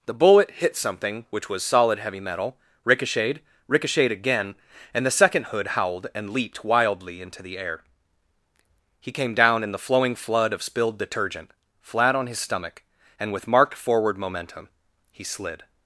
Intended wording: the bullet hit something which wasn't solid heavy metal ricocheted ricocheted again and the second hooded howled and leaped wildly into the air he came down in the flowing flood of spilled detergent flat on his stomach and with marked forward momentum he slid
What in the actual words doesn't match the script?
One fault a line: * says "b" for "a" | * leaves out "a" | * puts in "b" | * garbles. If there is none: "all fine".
* says "was" for "wasn't"
* says "hood" for "hooded"